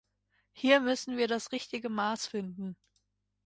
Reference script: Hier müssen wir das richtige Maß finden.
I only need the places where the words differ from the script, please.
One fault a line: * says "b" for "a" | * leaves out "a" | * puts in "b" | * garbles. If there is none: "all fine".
all fine